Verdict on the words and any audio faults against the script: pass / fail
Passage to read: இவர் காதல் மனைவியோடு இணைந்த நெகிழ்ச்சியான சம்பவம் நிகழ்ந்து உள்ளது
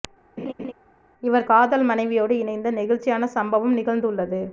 fail